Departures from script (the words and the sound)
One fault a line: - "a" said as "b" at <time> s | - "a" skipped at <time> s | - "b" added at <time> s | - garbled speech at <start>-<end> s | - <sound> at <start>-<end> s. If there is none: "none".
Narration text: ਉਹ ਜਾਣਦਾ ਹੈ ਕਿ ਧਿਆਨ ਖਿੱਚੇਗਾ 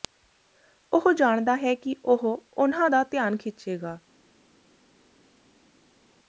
- "ਉਹ ਉਨ੍ਹਾਂ ਦਾ" added at 2.0 s